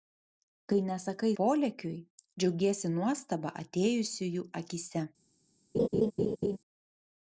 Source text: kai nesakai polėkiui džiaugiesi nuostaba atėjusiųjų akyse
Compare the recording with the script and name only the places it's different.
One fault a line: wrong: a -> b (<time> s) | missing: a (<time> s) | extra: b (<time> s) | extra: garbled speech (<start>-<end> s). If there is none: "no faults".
no faults